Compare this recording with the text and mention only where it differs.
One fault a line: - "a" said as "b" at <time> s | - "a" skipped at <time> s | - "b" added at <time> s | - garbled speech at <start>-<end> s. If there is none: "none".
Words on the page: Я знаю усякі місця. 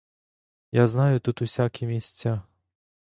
- "тут" added at 1.2 s